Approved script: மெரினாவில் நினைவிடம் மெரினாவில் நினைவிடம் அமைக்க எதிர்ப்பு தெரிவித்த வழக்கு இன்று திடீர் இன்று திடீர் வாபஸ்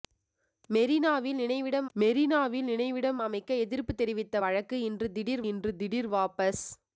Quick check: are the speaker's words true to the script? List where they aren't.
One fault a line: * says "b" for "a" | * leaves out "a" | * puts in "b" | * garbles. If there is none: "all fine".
all fine